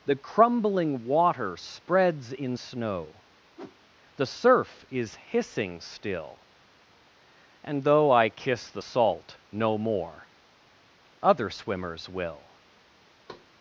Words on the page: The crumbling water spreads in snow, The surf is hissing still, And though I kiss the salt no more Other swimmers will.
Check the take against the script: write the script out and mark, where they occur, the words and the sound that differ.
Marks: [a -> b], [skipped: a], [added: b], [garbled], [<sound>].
The crumbling water spreads in snow, [whoosh] The surf is hissing still, And though I kiss the salt no more Other swimmers will. [thud]